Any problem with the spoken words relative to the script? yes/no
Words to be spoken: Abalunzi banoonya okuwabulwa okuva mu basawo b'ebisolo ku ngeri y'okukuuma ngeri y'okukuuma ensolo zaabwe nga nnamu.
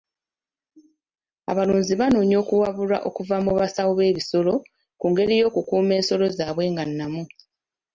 yes